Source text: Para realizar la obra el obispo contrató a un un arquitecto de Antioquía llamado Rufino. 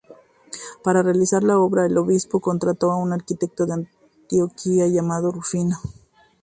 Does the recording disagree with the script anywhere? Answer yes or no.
yes